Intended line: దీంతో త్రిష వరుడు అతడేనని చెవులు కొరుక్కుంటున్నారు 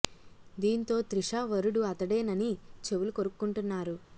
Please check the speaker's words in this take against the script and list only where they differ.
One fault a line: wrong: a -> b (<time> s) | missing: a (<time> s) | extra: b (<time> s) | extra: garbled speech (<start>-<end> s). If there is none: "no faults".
no faults